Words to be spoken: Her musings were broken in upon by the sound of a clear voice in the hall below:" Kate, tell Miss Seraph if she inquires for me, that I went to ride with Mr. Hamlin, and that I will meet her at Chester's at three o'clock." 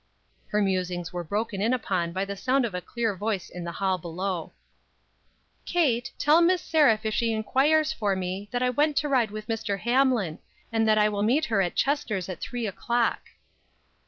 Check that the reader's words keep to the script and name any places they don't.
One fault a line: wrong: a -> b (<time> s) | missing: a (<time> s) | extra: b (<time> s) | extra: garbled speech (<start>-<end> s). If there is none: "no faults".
no faults